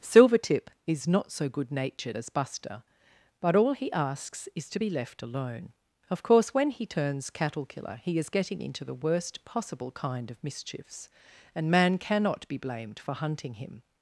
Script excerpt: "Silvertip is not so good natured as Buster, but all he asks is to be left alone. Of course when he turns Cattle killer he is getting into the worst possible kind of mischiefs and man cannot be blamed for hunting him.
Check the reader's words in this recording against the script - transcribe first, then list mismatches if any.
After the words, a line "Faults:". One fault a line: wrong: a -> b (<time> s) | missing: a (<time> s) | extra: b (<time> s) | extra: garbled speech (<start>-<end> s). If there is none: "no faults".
"Silvertip is not so good natured as Buster, but all he asks is to be left alone. Of course when he turns Cattle killer he is getting into the worst possible kind of mischiefs and man cannot be blamed for hunting him.
Faults:
no faults